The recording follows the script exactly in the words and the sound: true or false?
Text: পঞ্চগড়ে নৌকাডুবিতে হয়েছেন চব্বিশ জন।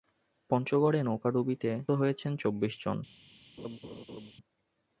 false